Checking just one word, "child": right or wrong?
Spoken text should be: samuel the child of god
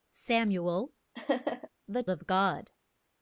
wrong